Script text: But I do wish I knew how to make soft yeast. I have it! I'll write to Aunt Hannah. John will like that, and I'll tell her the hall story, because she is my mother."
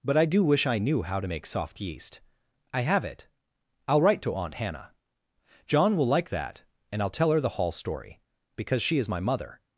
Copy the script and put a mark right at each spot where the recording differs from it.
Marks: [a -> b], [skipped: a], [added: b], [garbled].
But I do wish I knew how to make soft yeast. I have it! I'll write to Aunt Hannah. John will like that, and I'll tell her the hall story, because she is my mother."